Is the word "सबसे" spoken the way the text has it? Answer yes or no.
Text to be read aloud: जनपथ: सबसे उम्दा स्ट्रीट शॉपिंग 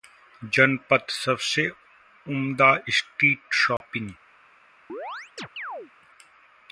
yes